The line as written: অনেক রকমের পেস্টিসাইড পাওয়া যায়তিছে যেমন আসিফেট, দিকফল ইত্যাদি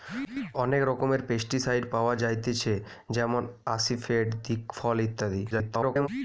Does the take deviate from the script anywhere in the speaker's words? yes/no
yes